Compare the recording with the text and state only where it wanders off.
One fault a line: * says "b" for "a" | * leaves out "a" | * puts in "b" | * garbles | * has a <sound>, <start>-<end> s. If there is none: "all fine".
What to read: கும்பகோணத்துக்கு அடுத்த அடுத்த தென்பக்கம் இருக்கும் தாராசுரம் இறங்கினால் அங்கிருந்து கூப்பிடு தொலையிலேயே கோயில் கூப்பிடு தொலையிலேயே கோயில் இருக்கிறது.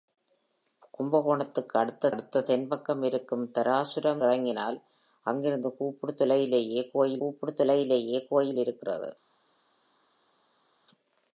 all fine